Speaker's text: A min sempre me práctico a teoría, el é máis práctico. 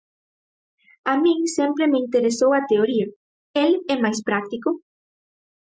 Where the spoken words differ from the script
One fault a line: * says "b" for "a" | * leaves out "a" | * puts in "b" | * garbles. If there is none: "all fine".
* says "interesou" for "práctico"